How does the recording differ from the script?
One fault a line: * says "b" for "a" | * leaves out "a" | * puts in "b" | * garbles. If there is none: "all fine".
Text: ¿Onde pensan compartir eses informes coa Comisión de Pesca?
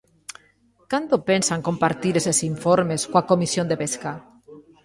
* says "Cando" for "Onde"